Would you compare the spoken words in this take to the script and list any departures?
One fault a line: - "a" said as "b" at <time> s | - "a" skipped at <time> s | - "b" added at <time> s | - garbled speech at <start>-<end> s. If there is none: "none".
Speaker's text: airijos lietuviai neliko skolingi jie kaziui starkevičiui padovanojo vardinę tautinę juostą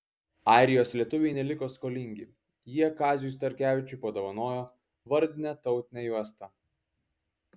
none